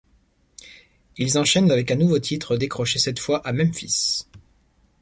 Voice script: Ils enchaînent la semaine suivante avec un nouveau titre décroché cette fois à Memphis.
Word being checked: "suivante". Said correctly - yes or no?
no